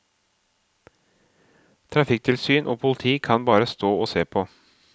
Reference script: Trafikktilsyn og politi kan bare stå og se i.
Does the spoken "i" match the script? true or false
false